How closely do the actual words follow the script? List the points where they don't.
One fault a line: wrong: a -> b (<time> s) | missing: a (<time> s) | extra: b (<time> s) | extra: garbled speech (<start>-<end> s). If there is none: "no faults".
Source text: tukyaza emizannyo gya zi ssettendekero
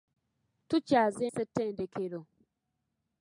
missing: emizannyo gya zi (1.2 s)